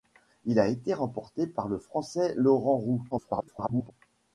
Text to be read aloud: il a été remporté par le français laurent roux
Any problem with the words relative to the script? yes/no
yes